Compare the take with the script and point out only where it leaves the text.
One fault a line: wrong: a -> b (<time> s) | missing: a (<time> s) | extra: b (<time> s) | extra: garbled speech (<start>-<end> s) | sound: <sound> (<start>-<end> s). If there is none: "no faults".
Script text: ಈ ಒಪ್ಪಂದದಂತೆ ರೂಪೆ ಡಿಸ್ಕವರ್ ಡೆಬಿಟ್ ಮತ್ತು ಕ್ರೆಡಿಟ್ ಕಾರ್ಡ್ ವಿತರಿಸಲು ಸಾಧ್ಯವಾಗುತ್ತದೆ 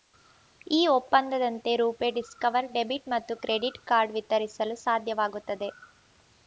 no faults